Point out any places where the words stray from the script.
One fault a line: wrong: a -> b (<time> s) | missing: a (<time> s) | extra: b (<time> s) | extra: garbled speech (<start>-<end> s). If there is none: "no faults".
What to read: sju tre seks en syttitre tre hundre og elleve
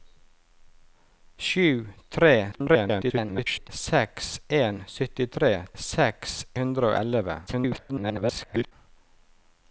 extra: garbled speech (2.5-3.7 s)
wrong: tre -> seks (5.8 s)
extra: garbled speech (7.5-8.7 s)